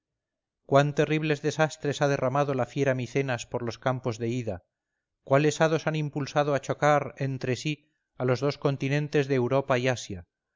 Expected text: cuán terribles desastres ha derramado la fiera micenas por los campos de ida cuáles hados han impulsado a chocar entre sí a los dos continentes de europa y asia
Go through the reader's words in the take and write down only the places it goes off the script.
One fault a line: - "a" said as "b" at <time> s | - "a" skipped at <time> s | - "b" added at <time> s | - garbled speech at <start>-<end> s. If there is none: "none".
none